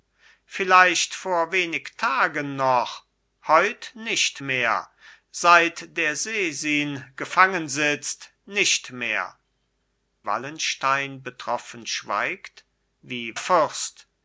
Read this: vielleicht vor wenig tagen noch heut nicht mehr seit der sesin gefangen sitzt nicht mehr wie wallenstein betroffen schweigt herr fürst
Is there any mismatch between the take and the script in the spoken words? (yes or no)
yes